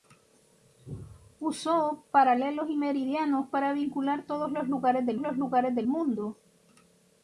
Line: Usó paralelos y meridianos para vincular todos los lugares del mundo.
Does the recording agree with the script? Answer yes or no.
no